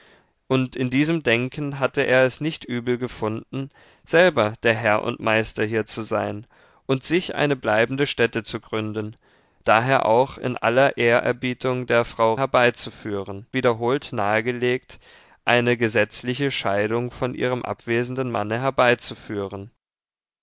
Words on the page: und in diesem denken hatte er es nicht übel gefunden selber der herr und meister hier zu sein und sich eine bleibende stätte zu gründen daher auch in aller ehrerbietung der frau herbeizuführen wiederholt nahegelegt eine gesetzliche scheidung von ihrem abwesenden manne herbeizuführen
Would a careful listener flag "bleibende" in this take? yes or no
no